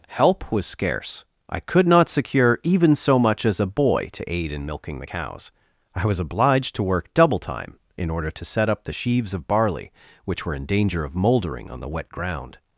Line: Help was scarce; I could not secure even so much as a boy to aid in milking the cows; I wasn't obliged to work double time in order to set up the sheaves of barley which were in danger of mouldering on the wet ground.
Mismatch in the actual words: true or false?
true